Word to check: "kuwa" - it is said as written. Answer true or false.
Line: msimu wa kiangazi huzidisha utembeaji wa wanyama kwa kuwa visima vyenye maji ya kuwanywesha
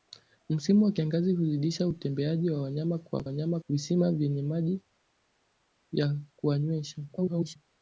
false